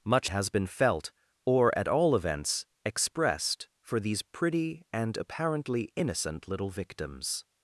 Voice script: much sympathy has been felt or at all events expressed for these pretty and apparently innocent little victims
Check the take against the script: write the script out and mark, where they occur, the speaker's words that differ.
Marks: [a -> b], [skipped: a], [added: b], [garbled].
much [skipped: sympathy] has been felt or at all events expressed for these pretty and apparently innocent little victims